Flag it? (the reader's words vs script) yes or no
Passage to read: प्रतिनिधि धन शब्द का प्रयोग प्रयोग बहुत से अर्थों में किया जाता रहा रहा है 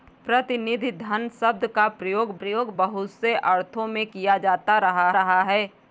no